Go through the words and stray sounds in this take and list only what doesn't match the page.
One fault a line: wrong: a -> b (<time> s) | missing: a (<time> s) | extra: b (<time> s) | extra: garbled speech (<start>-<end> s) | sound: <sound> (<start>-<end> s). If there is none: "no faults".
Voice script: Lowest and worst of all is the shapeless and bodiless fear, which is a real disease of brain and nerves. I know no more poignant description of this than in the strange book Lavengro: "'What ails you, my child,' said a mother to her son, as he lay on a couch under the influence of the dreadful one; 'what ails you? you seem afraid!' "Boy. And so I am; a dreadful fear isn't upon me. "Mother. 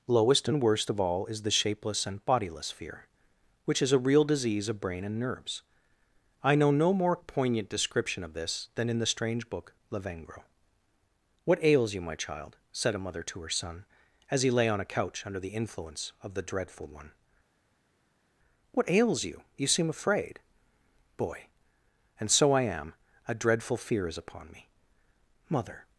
wrong: isn't -> is (24.1 s)